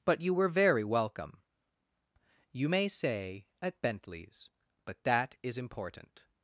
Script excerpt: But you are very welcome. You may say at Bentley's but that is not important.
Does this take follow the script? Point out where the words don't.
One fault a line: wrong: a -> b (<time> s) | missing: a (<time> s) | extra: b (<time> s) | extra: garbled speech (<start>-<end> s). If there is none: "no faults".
wrong: are -> were (0.3 s)
missing: not (5.6 s)